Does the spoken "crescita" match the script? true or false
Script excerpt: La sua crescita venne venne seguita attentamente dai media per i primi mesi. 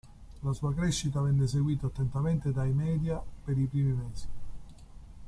true